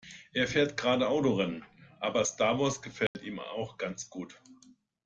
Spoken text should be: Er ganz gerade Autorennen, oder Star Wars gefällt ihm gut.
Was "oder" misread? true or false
true